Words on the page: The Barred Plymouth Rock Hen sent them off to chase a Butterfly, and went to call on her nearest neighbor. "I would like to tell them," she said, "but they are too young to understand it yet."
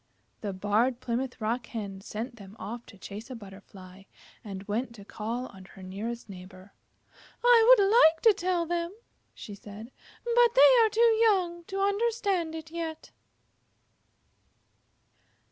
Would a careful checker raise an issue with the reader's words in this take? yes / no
no